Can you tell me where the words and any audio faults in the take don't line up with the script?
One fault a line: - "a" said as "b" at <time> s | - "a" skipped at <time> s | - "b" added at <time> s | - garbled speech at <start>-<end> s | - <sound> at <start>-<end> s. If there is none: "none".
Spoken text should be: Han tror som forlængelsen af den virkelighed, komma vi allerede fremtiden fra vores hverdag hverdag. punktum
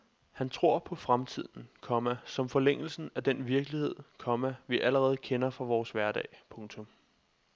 - "på fremtiden komma" added at 0.8 s
- "fremtiden" said as "kender" at 5.2 s
- "hverdag" skipped at 6.3 s